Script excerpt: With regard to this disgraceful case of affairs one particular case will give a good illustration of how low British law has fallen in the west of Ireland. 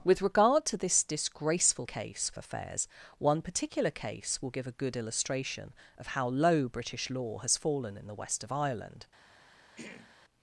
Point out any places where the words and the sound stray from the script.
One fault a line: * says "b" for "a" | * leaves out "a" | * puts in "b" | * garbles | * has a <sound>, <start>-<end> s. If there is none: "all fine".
* has a throat clearing, 9.8-10.2 s